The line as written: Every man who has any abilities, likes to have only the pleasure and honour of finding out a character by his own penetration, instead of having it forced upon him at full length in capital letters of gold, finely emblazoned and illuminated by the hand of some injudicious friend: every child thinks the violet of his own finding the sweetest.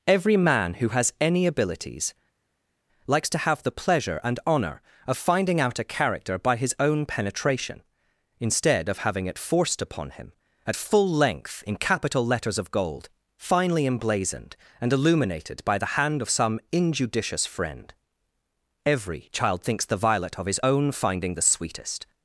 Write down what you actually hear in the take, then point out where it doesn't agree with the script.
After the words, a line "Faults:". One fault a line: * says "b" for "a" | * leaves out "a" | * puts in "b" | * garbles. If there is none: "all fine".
Every man who has any abilities, likes to have the pleasure and honour of finding out a character by his own penetration, instead of having it forced upon him at full length in capital letters of gold, finely emblazoned and illuminated by the hand of some injudicious friend: every child thinks the violet of his own finding the sweetest.
Faults:
* leaves out "only"